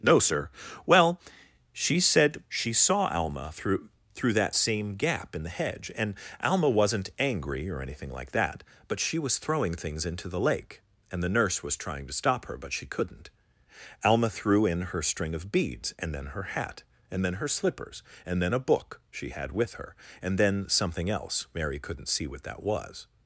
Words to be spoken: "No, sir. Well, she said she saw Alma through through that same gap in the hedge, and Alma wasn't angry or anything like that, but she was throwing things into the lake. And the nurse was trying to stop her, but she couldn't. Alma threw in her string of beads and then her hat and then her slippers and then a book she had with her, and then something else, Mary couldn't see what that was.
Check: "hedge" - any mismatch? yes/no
no